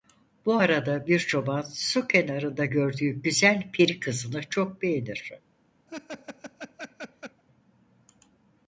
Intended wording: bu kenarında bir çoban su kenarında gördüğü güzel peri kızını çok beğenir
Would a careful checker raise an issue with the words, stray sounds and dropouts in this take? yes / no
yes